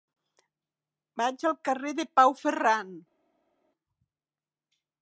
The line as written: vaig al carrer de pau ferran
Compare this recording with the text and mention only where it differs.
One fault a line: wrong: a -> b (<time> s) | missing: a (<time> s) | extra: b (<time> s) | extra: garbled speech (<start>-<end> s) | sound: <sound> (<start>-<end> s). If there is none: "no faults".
no faults